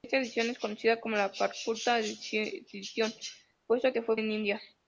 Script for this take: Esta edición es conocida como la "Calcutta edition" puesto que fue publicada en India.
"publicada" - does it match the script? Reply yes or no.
no